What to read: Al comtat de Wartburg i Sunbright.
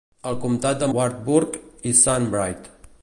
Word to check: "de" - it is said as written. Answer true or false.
true